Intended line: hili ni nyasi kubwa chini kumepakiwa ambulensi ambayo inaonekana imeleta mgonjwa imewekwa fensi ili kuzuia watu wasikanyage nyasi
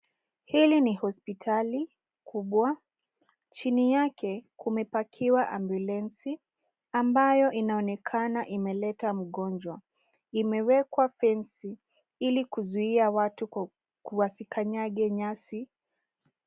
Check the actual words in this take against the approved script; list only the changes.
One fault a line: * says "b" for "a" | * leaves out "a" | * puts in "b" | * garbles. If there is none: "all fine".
* says "hospitali" for "nyasi"
* puts in "yake"